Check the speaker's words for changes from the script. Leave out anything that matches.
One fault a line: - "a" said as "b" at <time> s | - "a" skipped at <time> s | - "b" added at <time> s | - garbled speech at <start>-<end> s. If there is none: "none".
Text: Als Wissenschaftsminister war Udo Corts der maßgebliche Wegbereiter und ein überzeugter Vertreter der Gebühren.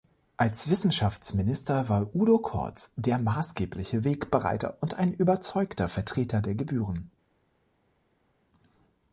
none